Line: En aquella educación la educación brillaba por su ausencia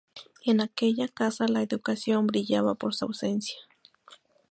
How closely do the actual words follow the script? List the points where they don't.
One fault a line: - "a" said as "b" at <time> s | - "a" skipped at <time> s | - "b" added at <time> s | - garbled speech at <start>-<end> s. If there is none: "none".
- "educación" said as "casa" at 1.1 s